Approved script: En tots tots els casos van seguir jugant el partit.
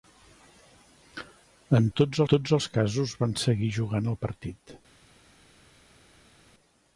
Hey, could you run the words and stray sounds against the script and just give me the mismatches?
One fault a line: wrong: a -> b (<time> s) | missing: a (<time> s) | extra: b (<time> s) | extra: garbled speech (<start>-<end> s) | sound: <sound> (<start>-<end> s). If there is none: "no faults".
no faults